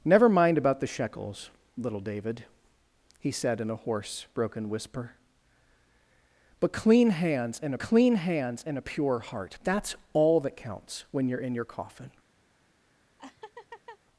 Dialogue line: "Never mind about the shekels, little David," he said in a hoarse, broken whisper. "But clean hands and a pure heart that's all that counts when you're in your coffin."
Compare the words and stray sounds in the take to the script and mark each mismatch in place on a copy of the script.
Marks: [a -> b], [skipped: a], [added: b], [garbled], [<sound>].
"Never mind about the shekels, little David," he said in a hoarse, broken whisper. "But clean hands and [added: clean hands and] a pure heart that's all that counts when you're in your coffin." [laugh]